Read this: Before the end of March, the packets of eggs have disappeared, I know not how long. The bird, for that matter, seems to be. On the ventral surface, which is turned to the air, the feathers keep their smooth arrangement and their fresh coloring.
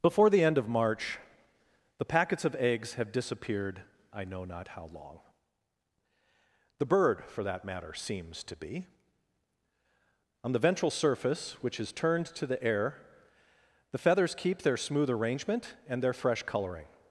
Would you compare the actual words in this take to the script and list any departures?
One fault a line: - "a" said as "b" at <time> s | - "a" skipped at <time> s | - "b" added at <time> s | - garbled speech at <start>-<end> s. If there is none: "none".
none